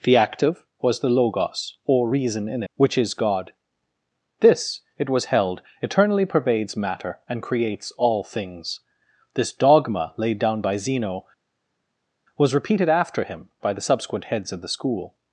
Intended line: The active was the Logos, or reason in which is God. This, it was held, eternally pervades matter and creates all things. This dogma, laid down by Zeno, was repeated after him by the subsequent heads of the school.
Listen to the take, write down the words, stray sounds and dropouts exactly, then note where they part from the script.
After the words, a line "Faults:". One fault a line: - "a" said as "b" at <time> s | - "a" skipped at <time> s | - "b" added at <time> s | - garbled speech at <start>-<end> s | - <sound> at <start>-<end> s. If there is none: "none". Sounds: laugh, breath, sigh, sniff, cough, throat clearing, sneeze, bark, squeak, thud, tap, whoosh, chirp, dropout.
The active was the Logos, or reason in which is God. This, it was held, eternally pervades matter and creates all things. This dogma, laid down by Zeno, was repeated after him by the subsequent heads of the school.
Faults:
none